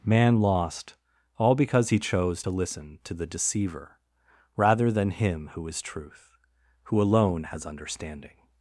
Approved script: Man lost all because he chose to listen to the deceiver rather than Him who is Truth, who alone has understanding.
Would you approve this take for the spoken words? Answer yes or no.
yes